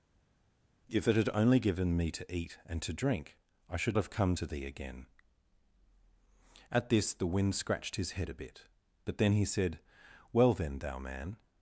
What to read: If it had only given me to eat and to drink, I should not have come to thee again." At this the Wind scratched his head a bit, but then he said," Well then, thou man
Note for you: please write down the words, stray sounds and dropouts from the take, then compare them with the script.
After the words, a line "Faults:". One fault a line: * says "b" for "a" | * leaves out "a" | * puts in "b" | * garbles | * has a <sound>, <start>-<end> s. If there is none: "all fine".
If it had only given me to eat and to drink, I should have come to thee again." At this the Wind scratched his head a bit, but then he said," Well then, thou man
Faults:
* leaves out "not"